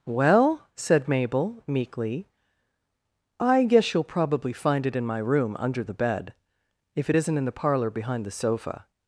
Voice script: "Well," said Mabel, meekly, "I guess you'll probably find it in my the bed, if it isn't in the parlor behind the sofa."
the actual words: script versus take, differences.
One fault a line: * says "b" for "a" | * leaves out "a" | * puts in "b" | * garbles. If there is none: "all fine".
* puts in "room under"